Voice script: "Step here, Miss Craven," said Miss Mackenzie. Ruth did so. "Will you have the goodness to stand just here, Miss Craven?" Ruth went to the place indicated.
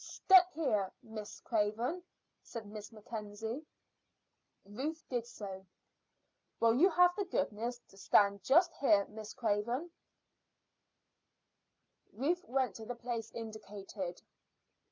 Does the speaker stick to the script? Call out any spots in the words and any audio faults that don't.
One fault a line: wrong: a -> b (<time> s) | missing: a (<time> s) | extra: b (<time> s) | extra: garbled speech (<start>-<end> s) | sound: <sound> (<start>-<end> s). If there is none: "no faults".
no faults